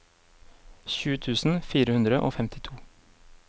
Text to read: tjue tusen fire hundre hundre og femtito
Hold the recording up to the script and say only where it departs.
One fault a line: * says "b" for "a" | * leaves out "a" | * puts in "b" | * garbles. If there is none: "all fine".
* leaves out "hundre"